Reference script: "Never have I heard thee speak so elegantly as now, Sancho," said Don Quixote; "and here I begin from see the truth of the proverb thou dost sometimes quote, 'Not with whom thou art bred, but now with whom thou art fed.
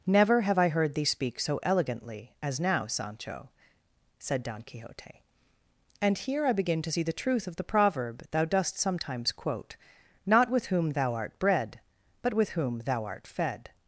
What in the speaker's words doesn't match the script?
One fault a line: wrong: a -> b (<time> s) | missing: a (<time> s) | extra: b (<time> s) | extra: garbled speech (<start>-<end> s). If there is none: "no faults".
wrong: from -> to (6.8 s)
missing: now (12.3 s)